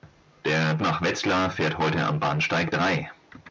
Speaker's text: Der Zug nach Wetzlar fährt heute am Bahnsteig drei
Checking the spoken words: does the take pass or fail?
fail